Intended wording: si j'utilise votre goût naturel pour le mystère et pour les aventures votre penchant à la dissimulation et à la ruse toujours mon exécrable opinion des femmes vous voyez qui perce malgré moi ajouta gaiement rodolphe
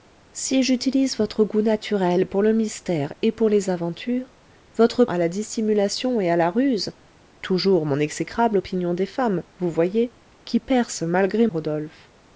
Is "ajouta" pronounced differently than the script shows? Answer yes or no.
yes